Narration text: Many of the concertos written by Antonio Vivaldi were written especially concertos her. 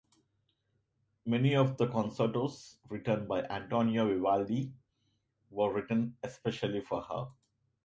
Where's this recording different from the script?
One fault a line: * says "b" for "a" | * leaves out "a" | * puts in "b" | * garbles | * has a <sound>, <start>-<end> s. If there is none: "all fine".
* says "for" for "concertos"